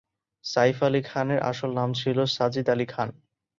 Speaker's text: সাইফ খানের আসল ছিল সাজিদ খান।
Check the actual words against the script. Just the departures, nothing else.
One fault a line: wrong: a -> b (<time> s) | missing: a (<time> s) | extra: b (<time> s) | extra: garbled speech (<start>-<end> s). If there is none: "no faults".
extra: আলী (0.8 s)
extra: নাম (1.7 s)
extra: আলী (2.7 s)